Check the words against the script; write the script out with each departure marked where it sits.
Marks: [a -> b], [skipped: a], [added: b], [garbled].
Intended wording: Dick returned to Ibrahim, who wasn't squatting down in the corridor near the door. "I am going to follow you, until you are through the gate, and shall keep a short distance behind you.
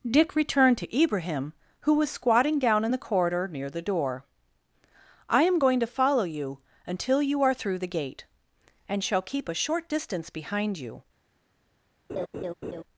Dick returned to Ibrahim, who [wasn't -> was] squatting down in the corridor near the door. "I am going to follow you, until you are through the gate, and shall keep a short distance behind you.